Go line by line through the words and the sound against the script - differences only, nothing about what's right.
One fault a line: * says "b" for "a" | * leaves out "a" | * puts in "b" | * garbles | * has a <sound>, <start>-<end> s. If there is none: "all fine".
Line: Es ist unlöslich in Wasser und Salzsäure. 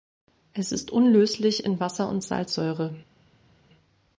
all fine